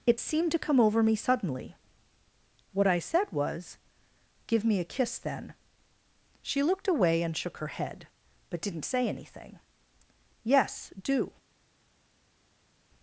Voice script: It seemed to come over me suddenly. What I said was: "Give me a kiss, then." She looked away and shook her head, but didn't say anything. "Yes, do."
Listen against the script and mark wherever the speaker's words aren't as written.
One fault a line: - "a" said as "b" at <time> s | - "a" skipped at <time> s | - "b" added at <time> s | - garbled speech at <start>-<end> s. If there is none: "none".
none